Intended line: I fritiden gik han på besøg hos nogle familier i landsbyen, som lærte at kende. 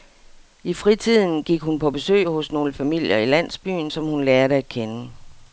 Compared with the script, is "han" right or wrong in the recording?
wrong